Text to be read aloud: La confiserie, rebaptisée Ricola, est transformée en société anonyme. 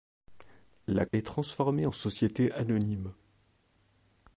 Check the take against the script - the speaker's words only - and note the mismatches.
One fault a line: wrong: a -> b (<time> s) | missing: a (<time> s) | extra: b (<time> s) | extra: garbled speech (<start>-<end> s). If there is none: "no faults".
missing: confiserie rebaptisée Ricola (1.1 s)